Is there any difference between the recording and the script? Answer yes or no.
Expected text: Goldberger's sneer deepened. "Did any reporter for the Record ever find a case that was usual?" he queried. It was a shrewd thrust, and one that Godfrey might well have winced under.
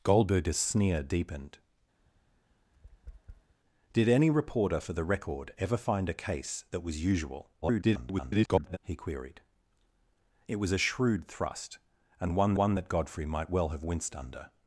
yes